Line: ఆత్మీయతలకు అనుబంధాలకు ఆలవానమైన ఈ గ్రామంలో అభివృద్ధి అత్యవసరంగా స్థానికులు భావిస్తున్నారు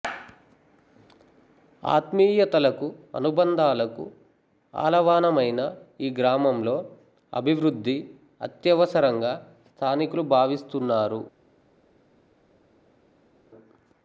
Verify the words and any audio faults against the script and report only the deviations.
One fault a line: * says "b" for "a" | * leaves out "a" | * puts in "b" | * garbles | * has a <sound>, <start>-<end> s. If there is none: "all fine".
all fine